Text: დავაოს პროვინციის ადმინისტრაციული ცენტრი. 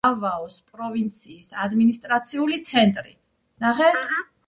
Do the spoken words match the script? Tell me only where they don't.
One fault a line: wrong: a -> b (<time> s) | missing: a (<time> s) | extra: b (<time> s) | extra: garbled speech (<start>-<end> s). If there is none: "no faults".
no faults